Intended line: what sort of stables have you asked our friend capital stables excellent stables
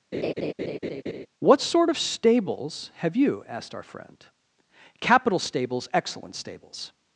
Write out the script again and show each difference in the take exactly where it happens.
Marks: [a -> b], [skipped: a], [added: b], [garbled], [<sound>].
[laugh] what sort of stables have you asked our friend capital stables excellent stables